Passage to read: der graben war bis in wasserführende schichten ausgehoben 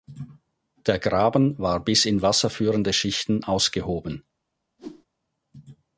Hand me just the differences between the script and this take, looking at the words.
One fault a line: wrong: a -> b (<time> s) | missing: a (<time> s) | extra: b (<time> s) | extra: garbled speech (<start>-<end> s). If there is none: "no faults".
no faults